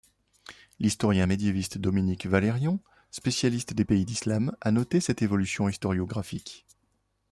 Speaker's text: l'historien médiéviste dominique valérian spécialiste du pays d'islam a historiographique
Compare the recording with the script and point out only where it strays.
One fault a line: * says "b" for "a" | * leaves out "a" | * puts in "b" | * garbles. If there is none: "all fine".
* says "des" for "du"
* puts in "noté cette évolution"